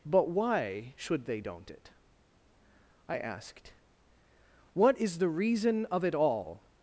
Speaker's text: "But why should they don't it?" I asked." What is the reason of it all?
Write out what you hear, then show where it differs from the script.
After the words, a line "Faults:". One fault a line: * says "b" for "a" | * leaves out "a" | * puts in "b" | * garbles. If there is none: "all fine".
"But why should they don't it?" I asked." What is the reason of it all?
Faults:
all fine